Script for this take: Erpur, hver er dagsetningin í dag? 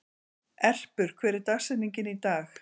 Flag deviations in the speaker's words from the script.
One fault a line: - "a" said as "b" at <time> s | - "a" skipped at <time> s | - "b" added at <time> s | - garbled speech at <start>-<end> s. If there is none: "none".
none